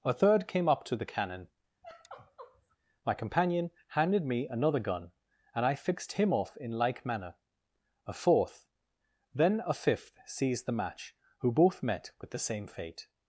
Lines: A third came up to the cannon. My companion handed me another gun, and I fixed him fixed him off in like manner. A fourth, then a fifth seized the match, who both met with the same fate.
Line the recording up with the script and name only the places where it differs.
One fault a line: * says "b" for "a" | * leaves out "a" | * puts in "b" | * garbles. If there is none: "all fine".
* leaves out "fixed him"